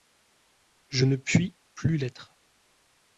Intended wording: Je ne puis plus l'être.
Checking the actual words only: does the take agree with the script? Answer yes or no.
yes